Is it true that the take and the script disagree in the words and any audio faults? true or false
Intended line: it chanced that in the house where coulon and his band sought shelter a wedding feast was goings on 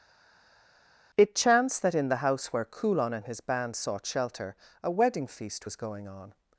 true